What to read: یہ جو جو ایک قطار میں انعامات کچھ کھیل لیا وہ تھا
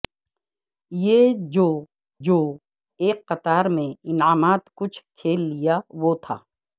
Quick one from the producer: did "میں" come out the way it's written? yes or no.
yes